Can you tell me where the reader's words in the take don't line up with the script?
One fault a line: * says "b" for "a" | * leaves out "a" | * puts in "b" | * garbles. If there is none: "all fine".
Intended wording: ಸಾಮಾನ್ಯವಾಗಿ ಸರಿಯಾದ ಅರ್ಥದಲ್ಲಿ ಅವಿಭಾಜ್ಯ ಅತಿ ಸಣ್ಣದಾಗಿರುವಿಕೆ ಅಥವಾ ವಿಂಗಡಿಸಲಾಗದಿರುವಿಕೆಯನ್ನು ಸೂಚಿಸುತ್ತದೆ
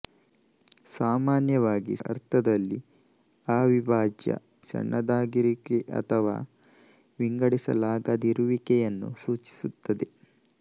* leaves out "ಸರಿಯಾದ"
* leaves out "ಅತಿ"